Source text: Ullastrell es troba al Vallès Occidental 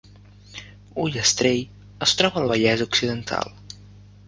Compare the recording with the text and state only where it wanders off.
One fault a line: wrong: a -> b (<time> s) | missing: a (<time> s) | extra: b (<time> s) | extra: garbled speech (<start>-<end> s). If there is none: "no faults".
no faults